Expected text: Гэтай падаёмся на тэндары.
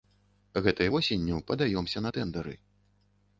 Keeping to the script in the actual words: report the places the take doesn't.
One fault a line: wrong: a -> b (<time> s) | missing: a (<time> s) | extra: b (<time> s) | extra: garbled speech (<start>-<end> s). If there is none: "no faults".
extra: восенню (0.9 s)